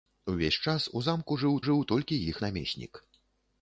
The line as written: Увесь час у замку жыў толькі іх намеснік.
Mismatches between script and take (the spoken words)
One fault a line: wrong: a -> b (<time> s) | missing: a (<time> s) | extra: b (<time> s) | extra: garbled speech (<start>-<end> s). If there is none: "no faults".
extra: жыў (1.7 s)